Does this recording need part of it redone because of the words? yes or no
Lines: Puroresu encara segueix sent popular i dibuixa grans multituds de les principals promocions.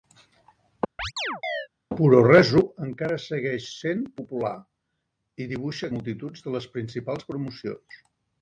yes